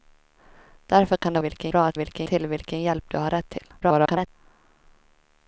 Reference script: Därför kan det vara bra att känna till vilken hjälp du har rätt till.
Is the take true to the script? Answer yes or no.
no